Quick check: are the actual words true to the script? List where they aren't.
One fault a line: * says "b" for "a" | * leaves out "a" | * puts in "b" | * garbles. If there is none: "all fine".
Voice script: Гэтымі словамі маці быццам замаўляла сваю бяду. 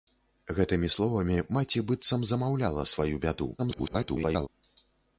* garbles